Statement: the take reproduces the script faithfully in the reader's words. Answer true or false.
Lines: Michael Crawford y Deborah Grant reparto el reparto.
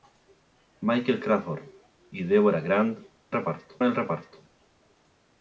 true